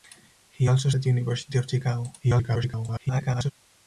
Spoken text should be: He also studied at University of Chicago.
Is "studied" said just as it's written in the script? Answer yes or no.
no